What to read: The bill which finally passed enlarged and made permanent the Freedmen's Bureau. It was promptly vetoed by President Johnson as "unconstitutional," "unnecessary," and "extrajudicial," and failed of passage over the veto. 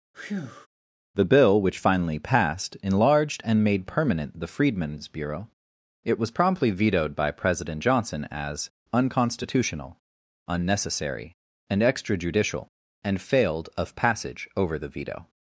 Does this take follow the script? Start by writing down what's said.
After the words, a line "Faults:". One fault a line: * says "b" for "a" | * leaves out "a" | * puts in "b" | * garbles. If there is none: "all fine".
The bill which finally passed enlarged and made permanent the Freedmen's Bureau. It was promptly vetoed by President Johnson as "unconstitutional," "unnecessary," and "extrajudicial," and failed of passage over the veto.
Faults:
all fine